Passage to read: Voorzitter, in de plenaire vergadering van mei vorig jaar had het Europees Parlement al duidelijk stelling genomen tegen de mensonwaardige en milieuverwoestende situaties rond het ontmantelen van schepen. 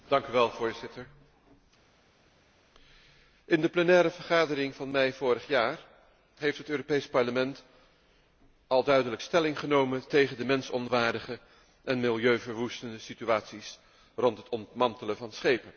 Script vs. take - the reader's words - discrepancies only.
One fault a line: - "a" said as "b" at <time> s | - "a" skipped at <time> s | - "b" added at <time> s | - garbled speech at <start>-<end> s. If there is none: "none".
- "had" said as "heeft" at 6.4 s